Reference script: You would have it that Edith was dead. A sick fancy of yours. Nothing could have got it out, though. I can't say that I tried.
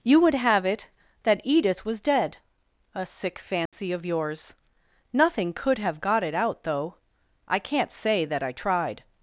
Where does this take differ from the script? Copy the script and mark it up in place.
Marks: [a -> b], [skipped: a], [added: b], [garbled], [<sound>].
You would have it that Edith was dead. A sick fancy [dropout] of yours. Nothing could have got it out, though. I can't say that I tried.